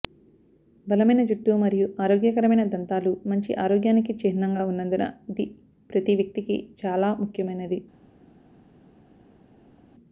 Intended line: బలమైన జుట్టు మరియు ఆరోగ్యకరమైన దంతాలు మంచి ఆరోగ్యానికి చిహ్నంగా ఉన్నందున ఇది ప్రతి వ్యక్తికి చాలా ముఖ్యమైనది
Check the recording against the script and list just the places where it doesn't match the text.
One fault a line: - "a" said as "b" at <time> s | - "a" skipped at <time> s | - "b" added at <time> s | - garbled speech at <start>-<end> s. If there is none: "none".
none